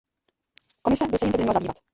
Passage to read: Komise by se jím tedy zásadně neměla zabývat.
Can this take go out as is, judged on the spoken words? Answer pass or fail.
fail